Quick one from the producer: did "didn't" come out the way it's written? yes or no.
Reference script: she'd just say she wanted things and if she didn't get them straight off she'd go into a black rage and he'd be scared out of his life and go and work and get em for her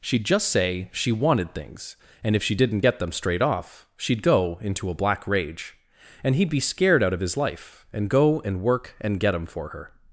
yes